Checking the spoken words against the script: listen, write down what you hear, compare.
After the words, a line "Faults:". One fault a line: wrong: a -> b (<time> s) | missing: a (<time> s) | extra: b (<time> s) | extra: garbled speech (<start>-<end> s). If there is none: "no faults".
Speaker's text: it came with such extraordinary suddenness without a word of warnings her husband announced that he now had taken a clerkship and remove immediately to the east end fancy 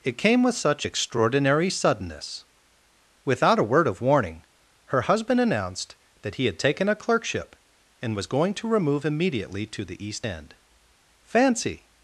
it came with such extraordinary suddenness without a word of warning her husband announced that he had taken a clerkship and was going to remove immediately to the east end fancy
Faults:
wrong: warnings -> warning (4.0 s)
missing: now (6.5 s)
extra: was going to (8.2 s)